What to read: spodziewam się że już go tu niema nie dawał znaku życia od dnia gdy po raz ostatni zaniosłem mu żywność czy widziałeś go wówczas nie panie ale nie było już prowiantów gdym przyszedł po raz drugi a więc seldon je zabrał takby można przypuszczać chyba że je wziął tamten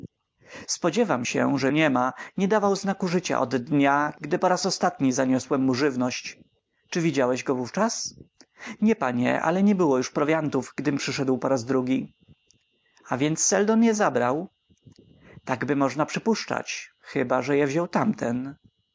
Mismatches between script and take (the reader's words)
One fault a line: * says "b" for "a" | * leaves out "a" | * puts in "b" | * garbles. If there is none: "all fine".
* leaves out "już go tu"